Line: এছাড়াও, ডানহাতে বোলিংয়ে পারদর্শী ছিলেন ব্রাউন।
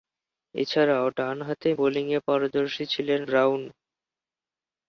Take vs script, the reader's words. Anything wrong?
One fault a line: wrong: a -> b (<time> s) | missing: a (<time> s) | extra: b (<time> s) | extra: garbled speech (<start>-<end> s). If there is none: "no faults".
no faults